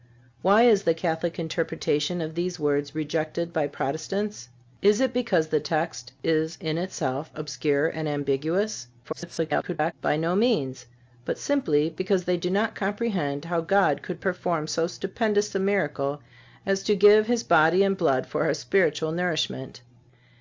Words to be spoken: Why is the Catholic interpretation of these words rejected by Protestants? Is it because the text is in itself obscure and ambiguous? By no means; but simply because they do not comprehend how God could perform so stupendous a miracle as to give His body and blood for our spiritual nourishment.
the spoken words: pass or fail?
fail